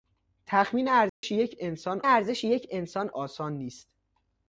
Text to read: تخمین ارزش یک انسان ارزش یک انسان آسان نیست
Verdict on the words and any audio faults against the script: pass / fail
fail